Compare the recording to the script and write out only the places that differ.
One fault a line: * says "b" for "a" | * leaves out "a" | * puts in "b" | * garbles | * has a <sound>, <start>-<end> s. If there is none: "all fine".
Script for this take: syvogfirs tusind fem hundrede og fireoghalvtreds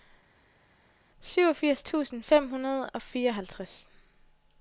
all fine